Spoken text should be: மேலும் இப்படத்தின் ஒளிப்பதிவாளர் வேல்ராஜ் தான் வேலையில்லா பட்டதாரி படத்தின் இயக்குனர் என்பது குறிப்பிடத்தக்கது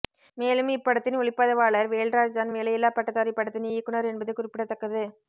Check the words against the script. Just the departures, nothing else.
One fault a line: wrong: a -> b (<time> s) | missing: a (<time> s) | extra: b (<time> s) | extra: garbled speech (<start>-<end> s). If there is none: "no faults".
no faults